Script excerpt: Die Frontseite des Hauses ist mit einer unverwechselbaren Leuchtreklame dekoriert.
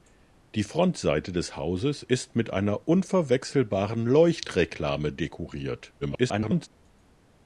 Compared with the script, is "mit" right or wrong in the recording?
right